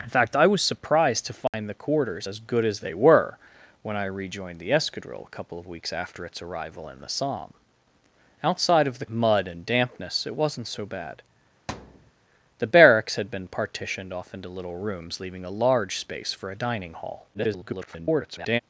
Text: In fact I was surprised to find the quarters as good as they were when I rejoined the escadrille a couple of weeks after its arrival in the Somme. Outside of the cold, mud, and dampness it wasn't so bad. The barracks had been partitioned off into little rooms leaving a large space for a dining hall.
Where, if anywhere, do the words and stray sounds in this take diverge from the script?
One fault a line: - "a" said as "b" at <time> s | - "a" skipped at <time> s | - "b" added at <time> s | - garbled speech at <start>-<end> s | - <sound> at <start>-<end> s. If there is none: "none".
- dropout at 1.5-1.5 s
- "cold" skipped at 9.1 s
- thud at 11.7-12.1 s
- garbled speech at 17.3-18.6 s